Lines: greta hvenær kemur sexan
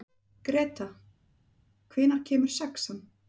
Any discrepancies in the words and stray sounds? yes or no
no